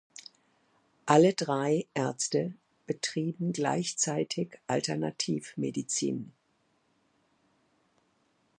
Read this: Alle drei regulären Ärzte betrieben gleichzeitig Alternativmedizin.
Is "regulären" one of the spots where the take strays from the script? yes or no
yes